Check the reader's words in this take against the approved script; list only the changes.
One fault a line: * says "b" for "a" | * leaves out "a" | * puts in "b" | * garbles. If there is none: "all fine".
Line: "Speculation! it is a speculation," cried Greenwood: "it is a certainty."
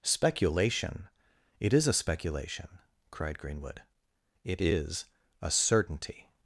all fine